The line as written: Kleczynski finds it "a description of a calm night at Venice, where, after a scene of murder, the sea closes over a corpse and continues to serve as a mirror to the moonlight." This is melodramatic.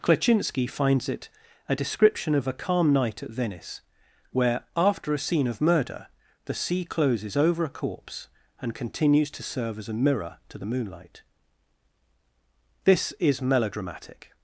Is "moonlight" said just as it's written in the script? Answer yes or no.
yes